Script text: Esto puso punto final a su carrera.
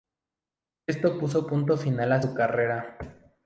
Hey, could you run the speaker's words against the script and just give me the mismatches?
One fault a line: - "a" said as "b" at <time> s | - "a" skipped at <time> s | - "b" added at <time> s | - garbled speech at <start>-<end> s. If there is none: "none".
none